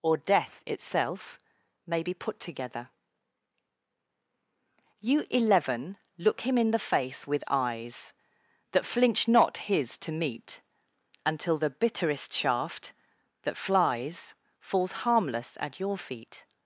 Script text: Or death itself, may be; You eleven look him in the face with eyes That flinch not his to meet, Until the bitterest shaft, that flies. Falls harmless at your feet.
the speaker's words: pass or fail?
fail